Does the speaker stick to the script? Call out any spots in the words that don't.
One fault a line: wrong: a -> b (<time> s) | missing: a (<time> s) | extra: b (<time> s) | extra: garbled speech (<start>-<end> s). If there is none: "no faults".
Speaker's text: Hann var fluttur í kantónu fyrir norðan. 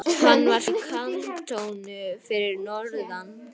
missing: fluttur (0.6 s)